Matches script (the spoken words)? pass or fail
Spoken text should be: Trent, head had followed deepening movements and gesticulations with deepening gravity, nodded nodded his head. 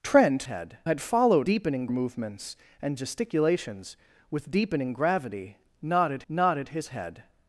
pass